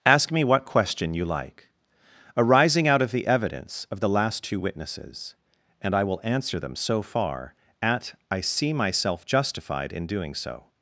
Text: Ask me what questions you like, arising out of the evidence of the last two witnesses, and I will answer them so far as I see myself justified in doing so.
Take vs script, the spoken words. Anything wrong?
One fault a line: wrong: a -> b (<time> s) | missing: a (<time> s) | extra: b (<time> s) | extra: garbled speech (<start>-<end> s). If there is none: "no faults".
wrong: questions -> question (0.7 s)
wrong: as -> at (7.8 s)